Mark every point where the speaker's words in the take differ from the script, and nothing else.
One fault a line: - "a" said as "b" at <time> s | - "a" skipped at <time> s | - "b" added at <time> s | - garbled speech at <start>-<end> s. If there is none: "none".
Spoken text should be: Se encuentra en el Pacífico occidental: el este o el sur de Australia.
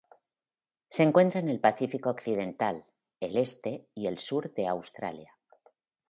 - "o" said as "y" at 3.9 s